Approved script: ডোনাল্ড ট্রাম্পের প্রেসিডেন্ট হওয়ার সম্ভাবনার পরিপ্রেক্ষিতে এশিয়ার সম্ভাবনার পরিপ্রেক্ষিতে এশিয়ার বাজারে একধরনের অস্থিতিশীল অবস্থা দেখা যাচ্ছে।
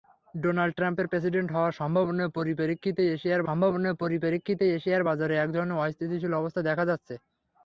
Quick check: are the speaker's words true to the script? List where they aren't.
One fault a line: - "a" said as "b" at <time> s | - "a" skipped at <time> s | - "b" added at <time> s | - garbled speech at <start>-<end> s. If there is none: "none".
none